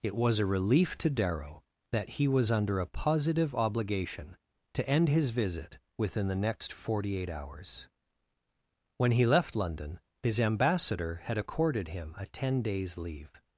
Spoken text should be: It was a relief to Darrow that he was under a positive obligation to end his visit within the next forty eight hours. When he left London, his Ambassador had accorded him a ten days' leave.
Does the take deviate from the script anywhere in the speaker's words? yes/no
no